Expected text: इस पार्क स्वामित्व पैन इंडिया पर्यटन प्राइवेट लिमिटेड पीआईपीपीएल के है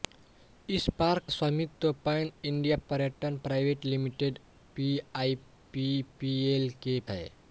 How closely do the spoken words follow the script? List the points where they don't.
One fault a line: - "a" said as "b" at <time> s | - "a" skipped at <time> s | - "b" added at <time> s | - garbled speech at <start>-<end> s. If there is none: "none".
none